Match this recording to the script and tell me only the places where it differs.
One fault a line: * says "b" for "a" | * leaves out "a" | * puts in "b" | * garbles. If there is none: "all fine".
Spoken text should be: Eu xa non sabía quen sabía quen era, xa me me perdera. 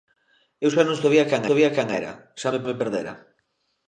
all fine